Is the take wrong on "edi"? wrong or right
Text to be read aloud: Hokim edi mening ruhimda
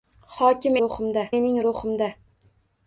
wrong